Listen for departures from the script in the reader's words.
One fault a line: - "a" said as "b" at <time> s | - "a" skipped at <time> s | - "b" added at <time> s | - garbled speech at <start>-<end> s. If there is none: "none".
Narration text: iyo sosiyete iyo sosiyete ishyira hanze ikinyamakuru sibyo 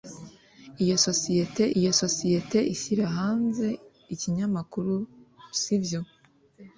none